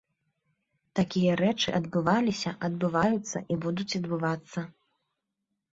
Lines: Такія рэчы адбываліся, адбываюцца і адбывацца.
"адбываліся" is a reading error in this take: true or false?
false